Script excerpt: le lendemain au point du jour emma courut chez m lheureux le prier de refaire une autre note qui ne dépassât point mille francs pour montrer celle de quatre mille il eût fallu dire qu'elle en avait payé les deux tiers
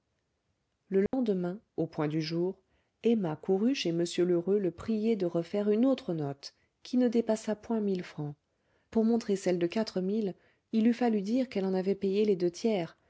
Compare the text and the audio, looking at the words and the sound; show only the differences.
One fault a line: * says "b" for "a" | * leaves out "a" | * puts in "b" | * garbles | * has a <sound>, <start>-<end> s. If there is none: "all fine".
* has a dropout, 1.1-1.1 s